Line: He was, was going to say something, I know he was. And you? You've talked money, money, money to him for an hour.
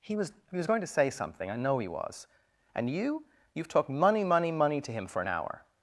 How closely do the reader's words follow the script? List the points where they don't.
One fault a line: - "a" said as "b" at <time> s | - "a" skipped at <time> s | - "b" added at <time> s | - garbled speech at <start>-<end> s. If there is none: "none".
- "he" added at 0.5 s